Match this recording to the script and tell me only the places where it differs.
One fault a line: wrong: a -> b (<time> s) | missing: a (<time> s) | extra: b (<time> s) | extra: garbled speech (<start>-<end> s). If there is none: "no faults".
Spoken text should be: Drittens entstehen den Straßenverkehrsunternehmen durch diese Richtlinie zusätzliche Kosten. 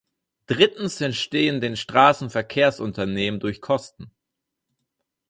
missing: diese Richtlinie zusätzliche (3.6 s)